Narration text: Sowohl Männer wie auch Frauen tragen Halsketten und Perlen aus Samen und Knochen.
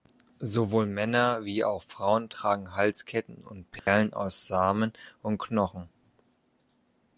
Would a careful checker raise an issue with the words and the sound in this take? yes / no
yes